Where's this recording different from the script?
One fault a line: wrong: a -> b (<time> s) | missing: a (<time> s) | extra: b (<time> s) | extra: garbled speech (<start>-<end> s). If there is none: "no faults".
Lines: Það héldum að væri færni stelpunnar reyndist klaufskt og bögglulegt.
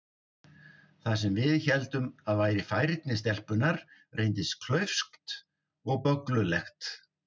extra: sem við (1.2 s)